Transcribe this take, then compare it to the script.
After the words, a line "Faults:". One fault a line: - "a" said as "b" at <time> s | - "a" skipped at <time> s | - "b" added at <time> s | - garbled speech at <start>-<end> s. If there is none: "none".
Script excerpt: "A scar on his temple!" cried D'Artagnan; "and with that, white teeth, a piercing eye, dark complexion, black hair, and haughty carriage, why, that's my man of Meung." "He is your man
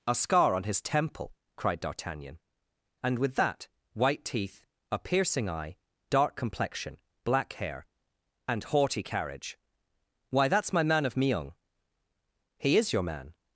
"A scar on his temple!" cried D'Artagnan; "and with that, white teeth, a piercing eye, dark complexion, black hair, and haughty carriage, why, that's my man of Meung." "He is your man
Faults:
none